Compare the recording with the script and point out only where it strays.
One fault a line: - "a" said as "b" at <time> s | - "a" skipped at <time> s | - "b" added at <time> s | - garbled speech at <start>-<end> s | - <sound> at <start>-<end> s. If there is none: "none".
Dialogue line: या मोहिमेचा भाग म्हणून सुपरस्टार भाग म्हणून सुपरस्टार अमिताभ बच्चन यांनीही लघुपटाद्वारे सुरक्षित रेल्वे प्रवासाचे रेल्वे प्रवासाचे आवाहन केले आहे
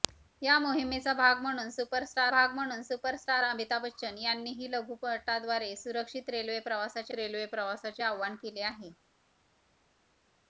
none